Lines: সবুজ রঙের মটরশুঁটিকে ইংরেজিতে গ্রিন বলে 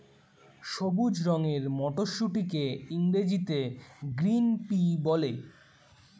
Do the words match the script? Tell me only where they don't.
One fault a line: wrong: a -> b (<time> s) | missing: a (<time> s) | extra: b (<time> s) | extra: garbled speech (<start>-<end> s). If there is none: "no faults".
extra: পি (4.7 s)